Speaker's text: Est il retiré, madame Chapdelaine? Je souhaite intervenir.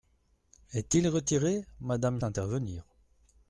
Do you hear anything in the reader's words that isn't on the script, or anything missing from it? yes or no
yes